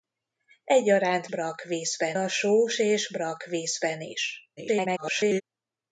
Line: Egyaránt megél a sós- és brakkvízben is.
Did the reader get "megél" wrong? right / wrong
wrong